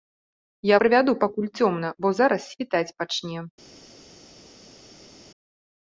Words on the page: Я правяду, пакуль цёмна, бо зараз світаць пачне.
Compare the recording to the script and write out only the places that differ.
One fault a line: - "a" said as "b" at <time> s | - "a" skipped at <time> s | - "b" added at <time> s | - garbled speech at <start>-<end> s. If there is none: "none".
none